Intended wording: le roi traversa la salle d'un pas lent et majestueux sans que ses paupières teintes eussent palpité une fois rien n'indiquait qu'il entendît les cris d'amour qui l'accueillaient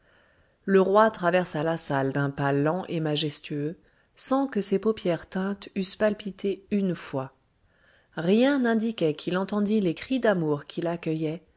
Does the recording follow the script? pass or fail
pass